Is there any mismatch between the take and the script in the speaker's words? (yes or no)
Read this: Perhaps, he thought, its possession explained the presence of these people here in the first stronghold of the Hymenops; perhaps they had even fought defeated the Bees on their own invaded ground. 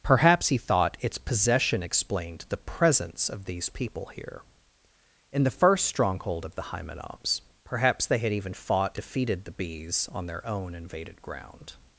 no